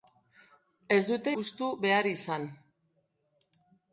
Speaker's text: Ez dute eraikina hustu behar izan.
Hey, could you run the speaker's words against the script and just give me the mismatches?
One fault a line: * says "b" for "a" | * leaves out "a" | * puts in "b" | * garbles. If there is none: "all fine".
* leaves out "eraikina"